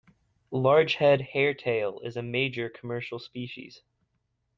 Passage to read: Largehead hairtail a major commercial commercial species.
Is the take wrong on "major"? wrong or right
right